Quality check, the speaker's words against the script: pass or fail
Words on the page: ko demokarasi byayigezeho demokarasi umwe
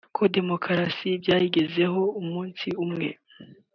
fail